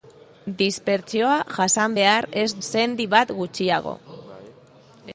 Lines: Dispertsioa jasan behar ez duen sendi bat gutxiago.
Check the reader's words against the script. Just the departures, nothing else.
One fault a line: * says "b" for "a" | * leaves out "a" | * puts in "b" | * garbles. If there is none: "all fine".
* leaves out "duen"